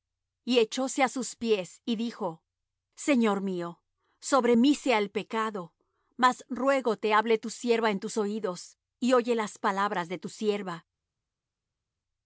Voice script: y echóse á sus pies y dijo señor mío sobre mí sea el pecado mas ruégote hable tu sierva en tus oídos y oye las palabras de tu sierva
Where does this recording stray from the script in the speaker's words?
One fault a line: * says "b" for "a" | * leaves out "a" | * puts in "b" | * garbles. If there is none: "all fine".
all fine